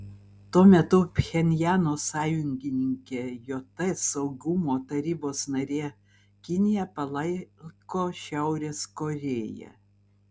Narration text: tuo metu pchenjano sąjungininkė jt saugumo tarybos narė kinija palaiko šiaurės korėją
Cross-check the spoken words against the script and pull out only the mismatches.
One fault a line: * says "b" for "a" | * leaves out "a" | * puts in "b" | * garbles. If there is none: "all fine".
all fine